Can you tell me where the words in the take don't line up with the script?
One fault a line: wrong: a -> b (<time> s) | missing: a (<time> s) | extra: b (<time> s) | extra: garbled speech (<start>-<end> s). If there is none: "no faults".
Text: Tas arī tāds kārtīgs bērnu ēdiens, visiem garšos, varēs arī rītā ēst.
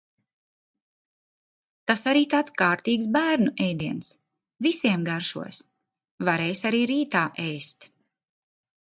no faults